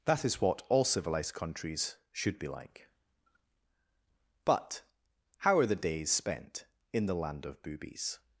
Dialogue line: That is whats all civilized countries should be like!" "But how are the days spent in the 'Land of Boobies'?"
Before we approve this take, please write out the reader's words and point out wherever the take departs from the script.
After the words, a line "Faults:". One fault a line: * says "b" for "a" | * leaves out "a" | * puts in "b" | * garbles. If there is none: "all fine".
That is what all civilized countries should be like!" "But how are the days spent in the 'Land of Boobies'?"
Faults:
* says "what" for "whats"